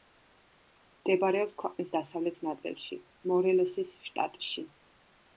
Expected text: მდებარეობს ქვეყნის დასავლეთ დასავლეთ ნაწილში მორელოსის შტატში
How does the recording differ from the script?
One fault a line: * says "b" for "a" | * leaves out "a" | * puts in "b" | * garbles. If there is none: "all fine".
* leaves out "დასავლეთ"